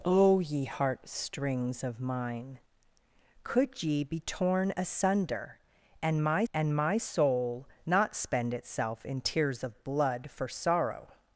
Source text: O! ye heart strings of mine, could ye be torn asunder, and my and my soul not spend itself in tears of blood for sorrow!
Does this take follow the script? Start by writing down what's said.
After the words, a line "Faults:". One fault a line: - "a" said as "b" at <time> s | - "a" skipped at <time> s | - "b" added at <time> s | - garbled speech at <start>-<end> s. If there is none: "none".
O! ye heart strings of mine, could ye be torn asunder, and my and my soul not spend itself in tears of blood for sorrow!
Faults:
none